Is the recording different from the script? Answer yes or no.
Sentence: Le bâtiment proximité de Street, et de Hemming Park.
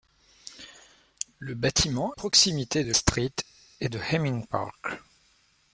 no